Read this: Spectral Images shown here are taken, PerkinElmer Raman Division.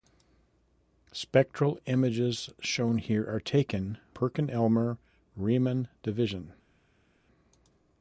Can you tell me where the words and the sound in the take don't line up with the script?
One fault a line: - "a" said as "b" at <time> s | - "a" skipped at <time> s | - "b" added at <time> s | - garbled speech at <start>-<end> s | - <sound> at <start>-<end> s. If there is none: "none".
none